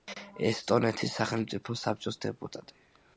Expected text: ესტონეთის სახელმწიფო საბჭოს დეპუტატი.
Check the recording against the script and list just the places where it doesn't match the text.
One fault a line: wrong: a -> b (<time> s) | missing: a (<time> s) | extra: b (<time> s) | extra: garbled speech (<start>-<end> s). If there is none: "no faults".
no faults